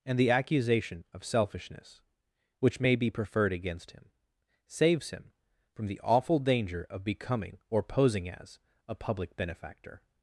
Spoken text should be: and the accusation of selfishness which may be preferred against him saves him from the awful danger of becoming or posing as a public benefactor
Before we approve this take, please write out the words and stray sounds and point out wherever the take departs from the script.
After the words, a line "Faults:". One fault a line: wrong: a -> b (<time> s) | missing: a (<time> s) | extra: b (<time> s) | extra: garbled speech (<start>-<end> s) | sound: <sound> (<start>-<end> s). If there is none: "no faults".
and the accusation of selfishness which may be preferred against him saves him from the awful danger of becoming or posing as a public benefactor
Faults:
no faults